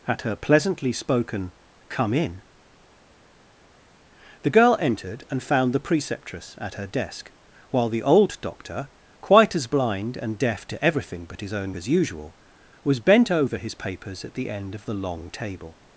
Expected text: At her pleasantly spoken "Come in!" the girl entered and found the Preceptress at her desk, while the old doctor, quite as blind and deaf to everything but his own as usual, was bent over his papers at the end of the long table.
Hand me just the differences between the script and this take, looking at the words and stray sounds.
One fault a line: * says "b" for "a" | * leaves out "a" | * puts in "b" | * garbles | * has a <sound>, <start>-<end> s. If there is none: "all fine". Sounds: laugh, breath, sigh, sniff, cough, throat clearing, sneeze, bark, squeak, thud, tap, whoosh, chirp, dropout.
all fine